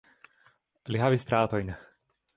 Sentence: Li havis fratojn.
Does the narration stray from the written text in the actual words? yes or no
no